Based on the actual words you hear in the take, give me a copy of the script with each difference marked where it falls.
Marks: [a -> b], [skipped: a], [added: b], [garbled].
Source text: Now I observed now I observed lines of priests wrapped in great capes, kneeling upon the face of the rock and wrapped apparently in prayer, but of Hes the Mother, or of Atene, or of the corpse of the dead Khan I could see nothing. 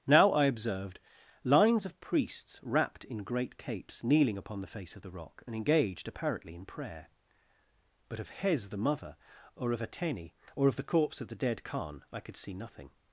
Now I observed [skipped: now I observed] lines of priests wrapped in great capes, kneeling upon the face of the rock and [wrapped -> engaged] apparently in prayer, but of Hes the Mother, or of Atene, or of the corpse of the dead Khan I could see nothing.